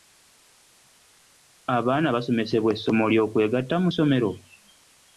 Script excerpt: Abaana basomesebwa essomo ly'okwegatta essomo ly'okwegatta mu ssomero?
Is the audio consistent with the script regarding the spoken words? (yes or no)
no